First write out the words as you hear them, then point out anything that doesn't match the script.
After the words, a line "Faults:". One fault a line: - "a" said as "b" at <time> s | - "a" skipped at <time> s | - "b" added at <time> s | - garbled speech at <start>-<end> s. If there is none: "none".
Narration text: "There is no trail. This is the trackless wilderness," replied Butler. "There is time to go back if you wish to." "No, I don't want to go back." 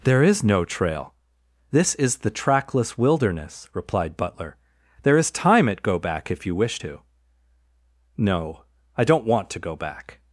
"There is no trail. This is the trackless wilderness," replied Butler. "There is time at go back if you wish to." "No, I don't want to go back."
Faults:
- "to" said as "at" at 5.7 s